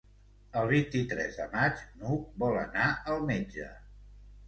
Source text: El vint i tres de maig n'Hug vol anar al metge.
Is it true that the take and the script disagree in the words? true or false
false